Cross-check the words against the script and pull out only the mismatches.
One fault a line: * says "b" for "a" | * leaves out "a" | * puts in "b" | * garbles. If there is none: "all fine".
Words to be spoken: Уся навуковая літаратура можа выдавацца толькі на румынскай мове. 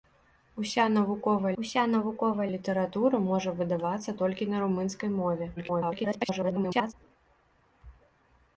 * puts in "уся навуковая"
* garbles